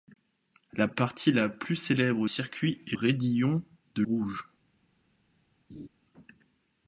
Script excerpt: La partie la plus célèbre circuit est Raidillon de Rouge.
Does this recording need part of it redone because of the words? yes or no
no